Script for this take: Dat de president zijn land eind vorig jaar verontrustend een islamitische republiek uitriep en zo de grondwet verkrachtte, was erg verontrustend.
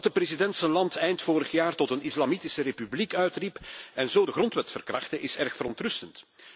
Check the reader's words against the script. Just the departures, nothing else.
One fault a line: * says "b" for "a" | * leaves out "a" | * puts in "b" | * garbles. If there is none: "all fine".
* says "tot" for "verontrustend"
* says "is" for "was"